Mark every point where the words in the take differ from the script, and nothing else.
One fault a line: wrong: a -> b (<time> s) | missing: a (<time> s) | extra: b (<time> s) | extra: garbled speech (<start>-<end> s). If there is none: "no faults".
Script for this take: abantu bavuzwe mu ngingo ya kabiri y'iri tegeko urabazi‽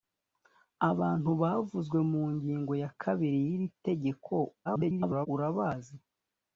extra: garbled speech (4.6-5.3 s)